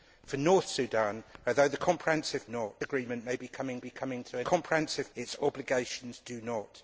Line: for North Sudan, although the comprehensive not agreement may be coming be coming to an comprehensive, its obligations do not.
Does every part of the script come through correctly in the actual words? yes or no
yes